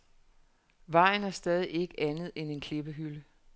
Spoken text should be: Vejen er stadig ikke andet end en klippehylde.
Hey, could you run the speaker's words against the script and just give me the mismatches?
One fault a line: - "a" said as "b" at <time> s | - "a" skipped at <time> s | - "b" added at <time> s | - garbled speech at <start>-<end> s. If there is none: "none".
none